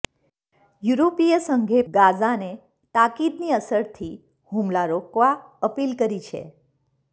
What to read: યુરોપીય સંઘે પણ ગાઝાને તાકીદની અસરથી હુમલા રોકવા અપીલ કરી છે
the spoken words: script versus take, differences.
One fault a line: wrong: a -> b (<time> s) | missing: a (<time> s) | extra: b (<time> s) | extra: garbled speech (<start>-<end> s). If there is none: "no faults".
missing: પણ (1.8 s)